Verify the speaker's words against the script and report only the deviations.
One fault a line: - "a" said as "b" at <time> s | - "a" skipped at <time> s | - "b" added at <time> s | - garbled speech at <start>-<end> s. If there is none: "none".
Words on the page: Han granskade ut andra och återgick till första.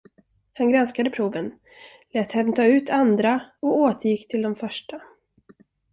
- "proven lät hämta" added at 1.1 s
- "de" added at 4.4 s